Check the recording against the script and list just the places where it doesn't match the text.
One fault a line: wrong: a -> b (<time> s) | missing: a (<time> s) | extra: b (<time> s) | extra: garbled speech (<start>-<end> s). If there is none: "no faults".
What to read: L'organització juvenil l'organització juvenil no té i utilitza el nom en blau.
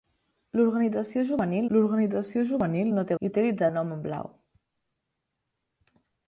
no faults